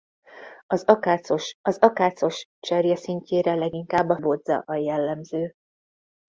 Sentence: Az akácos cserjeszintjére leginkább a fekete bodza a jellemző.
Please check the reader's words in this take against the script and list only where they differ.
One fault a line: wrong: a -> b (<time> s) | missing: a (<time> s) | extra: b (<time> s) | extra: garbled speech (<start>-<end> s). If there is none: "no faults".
extra: az akácos (1.6 s)
missing: fekete (4.2 s)